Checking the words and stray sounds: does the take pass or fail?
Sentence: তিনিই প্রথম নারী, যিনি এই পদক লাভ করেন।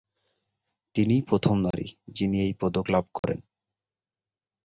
fail